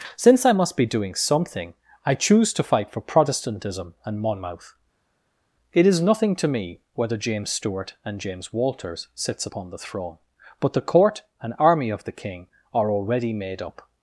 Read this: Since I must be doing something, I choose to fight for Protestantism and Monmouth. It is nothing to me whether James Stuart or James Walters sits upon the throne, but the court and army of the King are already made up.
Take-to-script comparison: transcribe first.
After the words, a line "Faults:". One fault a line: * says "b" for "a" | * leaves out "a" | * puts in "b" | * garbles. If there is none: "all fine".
Since I must be doing something, I choose to fight for Protestantism and Monmouth. It is nothing to me whether James Stuart and James Walters sits upon the throne, but the court and army of the King are already made up.
Faults:
* says "and" for "or"